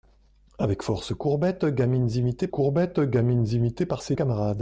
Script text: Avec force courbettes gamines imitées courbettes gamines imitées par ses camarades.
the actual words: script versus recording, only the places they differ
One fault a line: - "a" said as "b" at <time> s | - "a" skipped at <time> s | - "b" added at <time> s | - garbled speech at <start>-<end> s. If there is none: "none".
none